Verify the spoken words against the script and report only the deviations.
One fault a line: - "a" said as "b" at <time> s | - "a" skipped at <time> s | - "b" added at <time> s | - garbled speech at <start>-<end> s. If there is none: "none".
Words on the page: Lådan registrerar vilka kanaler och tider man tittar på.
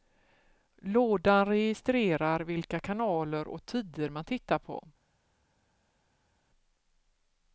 none